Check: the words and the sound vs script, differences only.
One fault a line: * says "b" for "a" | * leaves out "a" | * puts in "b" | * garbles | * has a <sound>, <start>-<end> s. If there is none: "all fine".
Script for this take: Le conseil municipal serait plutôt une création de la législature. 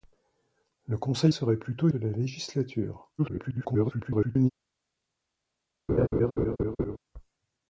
* leaves out "municipal"
* leaves out "une création"
* garbles
* has a laugh, 5.9-7.0 s